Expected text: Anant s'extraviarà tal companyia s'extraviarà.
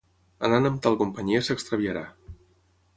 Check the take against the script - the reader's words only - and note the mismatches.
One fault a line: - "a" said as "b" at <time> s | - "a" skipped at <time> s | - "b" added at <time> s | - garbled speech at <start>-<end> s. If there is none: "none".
- "s'extraviarà" said as "amb" at 0.7 s